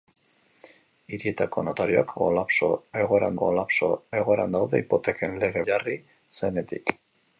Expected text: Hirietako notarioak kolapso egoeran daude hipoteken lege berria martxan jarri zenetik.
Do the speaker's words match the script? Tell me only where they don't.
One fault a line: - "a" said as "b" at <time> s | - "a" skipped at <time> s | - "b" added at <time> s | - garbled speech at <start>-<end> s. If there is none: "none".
- "kolapso egoeran" added at 3.4 s
- "berria martxan" skipped at 5.6 s